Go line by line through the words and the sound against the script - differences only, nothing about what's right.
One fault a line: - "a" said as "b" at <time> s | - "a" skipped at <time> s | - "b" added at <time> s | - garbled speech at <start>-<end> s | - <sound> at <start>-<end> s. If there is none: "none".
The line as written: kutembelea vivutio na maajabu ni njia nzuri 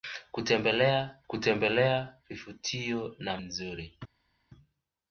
- "kutembelea" added at 1.3 s
- "maajabu ni njia" skipped at 3.4 s